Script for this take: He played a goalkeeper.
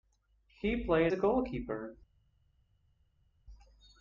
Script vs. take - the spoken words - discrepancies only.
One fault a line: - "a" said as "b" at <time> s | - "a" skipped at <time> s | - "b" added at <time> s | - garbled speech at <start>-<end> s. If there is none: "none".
none